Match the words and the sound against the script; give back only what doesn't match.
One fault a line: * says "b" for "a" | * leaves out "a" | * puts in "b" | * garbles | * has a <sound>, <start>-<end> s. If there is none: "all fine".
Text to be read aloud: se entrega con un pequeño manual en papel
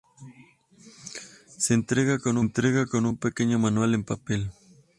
* puts in "entrega con"